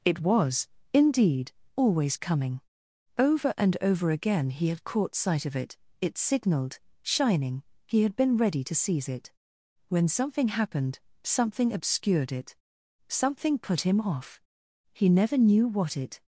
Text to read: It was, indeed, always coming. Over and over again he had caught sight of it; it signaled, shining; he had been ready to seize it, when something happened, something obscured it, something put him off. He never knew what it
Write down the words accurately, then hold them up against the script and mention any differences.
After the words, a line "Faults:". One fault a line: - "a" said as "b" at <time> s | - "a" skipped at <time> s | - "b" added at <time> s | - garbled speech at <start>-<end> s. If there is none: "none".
It was, indeed, always coming. Over and over again he had caught sight of it; it signaled, shining; he had been ready to seize it, when something happened, something obscured it, something put him off. He never knew what it
Faults:
none